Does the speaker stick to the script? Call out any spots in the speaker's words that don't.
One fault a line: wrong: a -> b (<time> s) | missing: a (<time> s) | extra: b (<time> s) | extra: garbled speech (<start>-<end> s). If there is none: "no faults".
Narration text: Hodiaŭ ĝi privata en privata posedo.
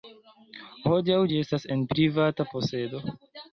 wrong: privata -> estas (1.5 s)